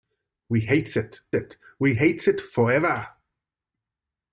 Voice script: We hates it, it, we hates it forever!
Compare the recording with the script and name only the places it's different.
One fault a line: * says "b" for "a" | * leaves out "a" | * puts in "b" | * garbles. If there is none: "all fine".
all fine